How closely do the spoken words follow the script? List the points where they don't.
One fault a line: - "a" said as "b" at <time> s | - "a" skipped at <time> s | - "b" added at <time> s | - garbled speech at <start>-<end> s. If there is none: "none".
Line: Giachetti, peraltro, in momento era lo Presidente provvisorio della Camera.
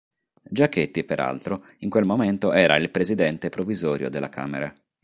- "quel" added at 1.9 s
- "lo" said as "il" at 2.8 s